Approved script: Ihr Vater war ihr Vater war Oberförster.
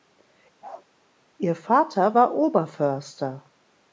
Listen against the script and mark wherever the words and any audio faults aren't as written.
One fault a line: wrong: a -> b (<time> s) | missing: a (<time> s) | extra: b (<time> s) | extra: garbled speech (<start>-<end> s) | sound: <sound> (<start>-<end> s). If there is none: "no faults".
sound: bark (0.6-0.9 s)
missing: ihr Vater war (2.4 s)